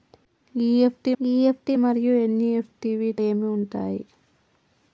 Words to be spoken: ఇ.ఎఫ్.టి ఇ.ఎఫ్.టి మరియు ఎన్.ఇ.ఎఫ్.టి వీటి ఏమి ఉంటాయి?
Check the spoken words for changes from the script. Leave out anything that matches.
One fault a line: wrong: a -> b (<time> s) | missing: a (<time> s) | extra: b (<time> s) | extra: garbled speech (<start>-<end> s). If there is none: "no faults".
no faults